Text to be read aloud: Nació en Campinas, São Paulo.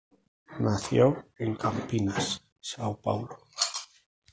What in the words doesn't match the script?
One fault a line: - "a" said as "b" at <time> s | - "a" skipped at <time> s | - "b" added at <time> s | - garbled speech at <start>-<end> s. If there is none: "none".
none